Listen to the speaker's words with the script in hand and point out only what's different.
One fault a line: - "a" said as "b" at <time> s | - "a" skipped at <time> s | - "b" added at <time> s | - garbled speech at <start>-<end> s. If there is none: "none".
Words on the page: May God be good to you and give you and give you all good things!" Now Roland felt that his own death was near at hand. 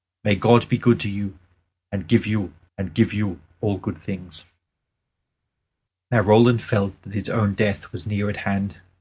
none